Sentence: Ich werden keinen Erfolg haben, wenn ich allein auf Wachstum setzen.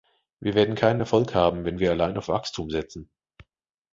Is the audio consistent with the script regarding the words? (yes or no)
no